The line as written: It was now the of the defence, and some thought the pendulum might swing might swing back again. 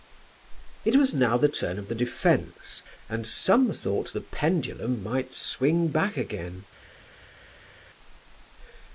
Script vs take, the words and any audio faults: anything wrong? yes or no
yes